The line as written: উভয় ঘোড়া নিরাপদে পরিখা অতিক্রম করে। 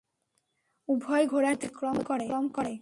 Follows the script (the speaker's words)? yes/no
no